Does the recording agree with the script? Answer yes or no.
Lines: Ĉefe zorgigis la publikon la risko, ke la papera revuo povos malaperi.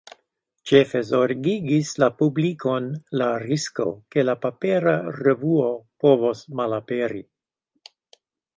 yes